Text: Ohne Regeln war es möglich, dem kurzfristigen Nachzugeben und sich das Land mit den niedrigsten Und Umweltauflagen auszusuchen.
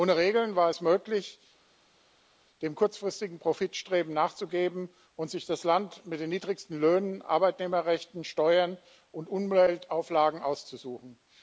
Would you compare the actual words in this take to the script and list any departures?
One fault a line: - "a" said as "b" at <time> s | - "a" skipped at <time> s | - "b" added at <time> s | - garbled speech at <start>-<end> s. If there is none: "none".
- "Profitstreben" added at 3.4 s
- "Löhnen Arbeitnehmerrechten Steuern" added at 6.8 s